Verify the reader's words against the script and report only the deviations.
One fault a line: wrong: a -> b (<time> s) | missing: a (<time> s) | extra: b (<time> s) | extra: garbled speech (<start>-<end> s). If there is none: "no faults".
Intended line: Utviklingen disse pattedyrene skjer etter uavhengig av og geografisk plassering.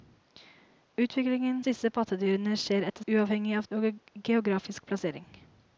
no faults